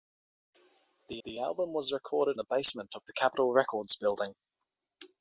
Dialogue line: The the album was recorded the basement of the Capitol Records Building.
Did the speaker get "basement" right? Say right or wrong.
right